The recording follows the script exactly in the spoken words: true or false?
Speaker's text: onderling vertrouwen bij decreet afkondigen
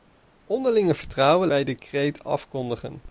true